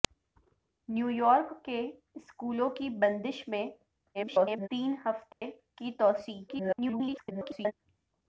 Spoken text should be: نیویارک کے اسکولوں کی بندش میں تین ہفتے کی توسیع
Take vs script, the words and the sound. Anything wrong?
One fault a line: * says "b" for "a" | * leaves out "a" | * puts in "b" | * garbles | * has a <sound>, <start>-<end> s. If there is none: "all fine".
* garbles
* has a dropout, 5.3-5.4 s
* garbles